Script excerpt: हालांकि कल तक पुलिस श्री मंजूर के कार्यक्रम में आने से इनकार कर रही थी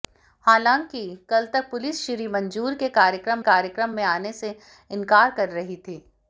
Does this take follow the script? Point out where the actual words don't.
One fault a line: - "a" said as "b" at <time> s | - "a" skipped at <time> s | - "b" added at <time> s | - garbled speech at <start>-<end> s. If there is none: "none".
- "कार्यक्रम" added at 3.4 s